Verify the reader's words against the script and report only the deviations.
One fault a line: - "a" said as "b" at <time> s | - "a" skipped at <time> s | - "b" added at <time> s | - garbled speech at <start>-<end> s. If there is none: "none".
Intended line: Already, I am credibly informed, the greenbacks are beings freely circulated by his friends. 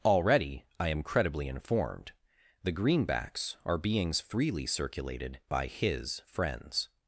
none